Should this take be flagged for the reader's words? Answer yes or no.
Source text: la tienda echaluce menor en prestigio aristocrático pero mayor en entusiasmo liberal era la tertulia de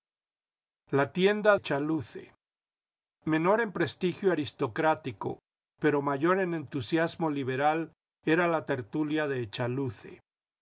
no